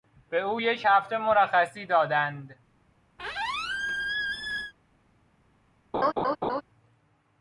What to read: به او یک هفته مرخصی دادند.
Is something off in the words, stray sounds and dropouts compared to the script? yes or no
yes